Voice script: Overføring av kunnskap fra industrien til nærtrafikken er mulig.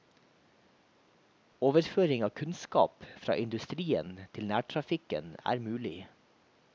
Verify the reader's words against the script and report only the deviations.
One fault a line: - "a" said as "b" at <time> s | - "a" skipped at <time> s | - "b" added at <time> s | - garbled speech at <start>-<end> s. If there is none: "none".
none